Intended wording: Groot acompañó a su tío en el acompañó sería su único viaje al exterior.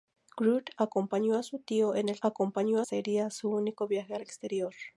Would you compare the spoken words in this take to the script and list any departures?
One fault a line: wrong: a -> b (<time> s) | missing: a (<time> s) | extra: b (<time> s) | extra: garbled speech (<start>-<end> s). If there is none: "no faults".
no faults